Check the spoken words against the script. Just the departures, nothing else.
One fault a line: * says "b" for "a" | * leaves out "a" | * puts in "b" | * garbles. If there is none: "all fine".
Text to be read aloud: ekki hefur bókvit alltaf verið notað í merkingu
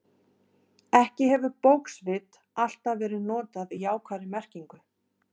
* puts in "jákvæðri"